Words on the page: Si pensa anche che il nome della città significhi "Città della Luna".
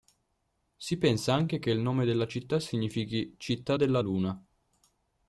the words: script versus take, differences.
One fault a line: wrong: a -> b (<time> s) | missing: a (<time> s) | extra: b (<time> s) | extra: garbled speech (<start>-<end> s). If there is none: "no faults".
no faults